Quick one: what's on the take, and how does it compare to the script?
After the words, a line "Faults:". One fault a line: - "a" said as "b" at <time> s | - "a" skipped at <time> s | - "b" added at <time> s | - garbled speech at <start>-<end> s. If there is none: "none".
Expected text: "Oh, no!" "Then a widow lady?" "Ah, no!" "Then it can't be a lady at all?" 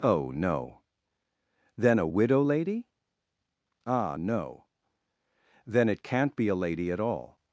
"Oh, no!" "Then a widow lady?" "Ah, no!" "Then it can't be a lady at all?"
Faults:
none